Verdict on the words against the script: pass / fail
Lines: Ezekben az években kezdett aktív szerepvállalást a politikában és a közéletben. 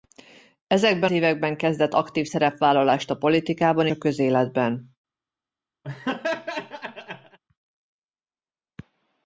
fail